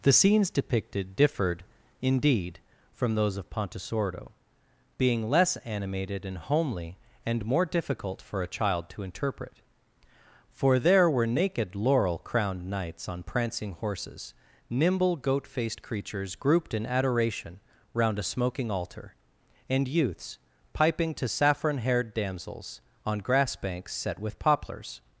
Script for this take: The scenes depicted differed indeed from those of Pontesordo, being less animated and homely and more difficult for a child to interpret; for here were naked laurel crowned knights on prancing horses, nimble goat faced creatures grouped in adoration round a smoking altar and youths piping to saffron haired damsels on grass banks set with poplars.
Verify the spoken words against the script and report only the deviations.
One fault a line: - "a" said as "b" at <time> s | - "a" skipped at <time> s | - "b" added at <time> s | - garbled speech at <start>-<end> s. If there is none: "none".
- "here" said as "there" at 10.8 s